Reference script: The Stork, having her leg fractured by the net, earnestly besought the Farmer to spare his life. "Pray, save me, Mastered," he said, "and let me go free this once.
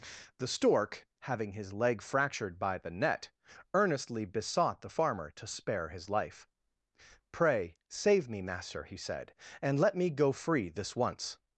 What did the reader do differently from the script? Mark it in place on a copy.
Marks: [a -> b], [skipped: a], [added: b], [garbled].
The Stork, having [her -> his] leg fractured by the net, earnestly besought the Farmer to spare his life. "Pray, save me, [Mastered," -> Master] he said, "and let me go free this once.